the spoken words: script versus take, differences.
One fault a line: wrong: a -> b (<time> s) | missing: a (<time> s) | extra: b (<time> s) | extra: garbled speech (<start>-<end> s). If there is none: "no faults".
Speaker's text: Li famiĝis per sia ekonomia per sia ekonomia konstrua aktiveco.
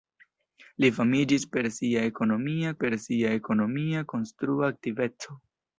no faults